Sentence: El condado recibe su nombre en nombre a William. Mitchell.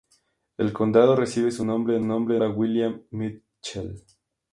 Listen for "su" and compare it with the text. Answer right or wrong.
right